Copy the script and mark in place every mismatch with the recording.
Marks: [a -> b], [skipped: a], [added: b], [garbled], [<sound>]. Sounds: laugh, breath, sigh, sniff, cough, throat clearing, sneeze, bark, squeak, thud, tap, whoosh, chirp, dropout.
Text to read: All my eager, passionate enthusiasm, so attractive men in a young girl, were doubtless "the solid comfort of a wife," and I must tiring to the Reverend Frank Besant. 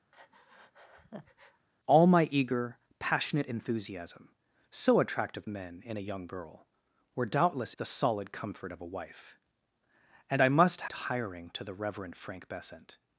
[breath] All my eager, passionate enthusiasm, so attractive men in a young girl, were doubtless "the solid comfort of a wife," and I must tiring to the Reverend Frank Besant.